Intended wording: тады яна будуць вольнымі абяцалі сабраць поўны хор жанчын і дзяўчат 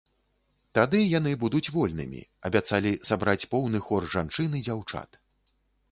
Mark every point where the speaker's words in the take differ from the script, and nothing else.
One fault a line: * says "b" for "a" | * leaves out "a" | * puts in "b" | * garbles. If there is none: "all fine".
* says "яны" for "яна"